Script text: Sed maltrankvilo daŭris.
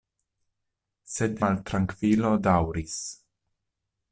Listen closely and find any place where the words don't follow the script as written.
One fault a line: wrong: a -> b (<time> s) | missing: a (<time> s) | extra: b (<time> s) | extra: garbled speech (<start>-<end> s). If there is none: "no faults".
no faults